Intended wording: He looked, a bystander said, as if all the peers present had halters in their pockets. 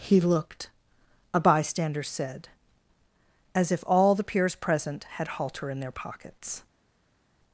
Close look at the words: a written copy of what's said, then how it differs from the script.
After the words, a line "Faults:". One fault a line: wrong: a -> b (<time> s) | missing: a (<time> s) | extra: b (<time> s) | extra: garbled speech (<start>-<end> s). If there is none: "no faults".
He looked, a bystander said, as if all the peers present had halter in their pockets.
Faults:
wrong: halters -> halter (5.3 s)